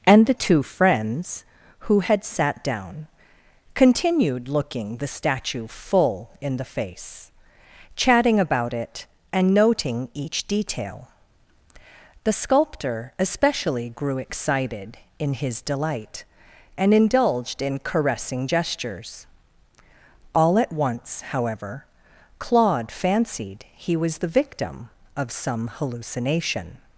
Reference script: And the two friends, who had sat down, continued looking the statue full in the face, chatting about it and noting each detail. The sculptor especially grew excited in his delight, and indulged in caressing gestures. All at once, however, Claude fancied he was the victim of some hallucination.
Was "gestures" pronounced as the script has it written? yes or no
yes